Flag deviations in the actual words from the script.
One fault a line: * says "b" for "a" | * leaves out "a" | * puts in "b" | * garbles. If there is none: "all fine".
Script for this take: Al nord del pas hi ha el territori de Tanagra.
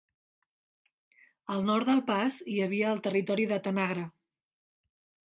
* says "havia" for "ha"